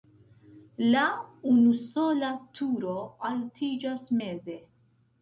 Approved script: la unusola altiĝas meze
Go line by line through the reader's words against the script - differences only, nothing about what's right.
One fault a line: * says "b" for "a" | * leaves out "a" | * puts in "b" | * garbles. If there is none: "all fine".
* puts in "turo"